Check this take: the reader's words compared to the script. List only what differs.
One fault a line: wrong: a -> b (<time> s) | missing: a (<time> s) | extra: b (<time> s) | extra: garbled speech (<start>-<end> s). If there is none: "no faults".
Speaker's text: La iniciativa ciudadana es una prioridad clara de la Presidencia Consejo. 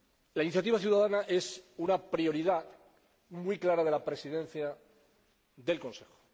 extra: muy (3.3 s)
extra: del (5.5 s)